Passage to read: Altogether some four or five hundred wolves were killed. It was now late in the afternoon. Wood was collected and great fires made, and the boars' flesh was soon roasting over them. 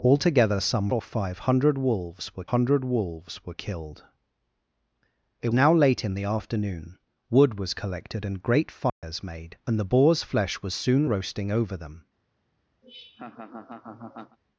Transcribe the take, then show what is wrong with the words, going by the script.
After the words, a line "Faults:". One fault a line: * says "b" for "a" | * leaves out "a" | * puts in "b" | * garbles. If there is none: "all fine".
Altogether some or five hundred wolves were hundred wolves were killed. It now late in the afternoon. Wood was collected and great fires made, and the boars' flesh was soon roasting over them.
Faults:
* leaves out "four"
* puts in "hundred wolves were"
* leaves out "was"